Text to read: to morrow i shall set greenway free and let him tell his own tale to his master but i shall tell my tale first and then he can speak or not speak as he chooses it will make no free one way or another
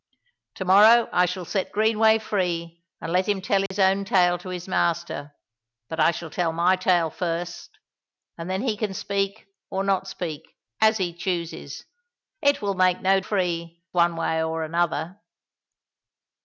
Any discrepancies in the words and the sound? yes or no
yes